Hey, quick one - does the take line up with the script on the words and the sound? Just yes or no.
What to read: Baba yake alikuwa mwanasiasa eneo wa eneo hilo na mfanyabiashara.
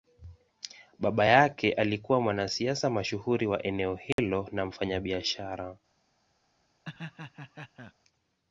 no